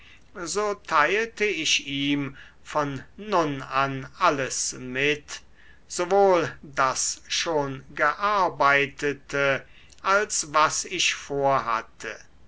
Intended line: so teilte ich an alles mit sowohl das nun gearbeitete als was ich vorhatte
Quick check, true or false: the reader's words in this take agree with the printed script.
false